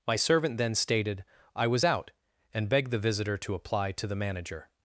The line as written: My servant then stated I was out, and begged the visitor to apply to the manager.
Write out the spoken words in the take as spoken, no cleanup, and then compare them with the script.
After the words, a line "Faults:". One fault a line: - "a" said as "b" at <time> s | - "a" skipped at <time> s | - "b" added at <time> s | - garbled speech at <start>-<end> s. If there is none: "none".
My servant then stated I was out, and begged the visitor to apply to the manager.
Faults:
none